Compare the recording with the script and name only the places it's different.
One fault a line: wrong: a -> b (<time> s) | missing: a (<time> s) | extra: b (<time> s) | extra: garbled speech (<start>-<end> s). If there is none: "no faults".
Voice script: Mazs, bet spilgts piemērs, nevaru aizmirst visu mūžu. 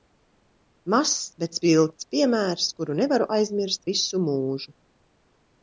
extra: kuru (2.8 s)